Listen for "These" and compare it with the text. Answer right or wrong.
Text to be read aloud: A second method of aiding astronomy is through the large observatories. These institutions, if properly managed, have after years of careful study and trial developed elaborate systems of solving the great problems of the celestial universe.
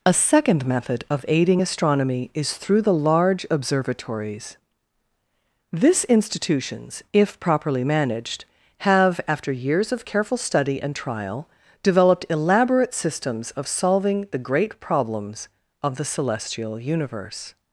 wrong